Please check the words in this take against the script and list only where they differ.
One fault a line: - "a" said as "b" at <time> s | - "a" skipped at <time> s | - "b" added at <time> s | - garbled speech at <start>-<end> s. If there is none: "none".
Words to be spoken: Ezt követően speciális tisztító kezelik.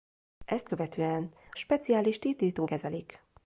none